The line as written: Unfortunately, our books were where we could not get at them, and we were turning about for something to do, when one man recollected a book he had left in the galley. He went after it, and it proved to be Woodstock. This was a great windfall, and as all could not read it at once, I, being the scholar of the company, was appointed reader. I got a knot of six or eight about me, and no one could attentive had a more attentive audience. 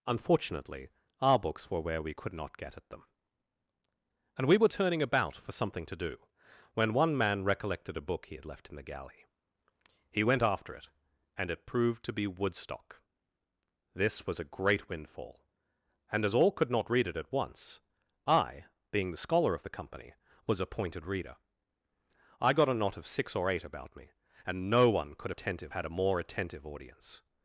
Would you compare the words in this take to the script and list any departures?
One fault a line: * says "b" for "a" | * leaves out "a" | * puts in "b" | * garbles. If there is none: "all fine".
all fine